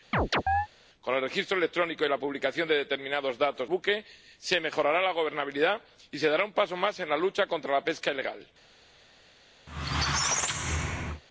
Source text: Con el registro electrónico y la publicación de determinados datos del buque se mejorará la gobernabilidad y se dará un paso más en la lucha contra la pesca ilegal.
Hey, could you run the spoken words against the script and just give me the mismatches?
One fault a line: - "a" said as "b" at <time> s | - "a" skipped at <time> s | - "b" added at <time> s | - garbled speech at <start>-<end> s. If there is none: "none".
- "del" skipped at 3.7 s